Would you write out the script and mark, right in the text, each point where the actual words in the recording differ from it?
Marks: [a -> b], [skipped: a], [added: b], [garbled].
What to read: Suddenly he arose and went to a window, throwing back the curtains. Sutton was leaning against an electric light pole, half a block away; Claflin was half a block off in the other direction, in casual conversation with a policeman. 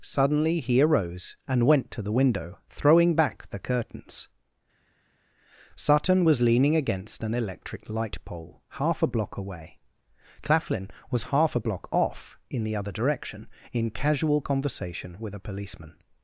Suddenly he arose and went to [a -> the] window, throwing back the curtains. Sutton was leaning against an electric light pole, half a block away; Claflin was half a block off in the other direction, in casual conversation with a policeman.